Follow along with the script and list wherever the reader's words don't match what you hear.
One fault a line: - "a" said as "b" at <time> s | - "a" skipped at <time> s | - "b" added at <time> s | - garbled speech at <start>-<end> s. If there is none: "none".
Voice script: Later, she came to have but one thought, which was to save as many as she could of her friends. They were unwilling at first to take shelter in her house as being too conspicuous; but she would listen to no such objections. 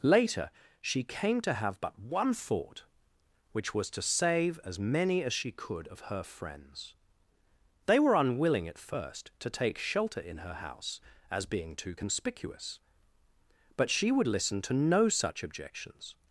none